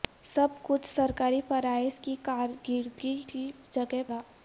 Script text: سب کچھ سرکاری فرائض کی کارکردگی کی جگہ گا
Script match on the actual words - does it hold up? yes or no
yes